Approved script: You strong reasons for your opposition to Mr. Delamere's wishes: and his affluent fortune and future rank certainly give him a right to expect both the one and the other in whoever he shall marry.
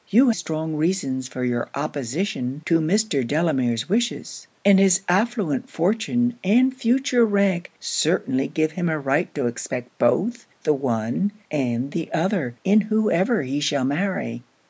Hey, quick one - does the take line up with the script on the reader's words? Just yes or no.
yes